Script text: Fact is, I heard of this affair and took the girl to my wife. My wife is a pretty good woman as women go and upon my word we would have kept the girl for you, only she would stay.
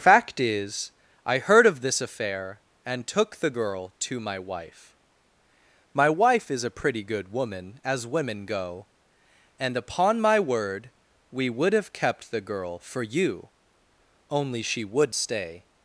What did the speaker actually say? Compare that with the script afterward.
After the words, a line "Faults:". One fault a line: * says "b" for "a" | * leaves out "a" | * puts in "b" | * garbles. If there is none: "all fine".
Fact is, I heard of this affair and took the girl to my wife. My wife is a pretty good woman as women go and upon my word we would have kept the girl for you, only she would stay.
Faults:
all fine